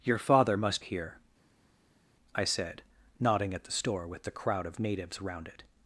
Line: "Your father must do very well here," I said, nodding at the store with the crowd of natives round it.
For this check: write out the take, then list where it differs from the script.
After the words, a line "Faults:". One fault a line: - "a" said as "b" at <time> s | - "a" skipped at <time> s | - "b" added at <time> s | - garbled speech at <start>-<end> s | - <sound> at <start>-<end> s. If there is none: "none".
"Your father must here," I said, nodding at the store with the crowd of natives round it.
Faults:
- "do very well" skipped at 0.8 s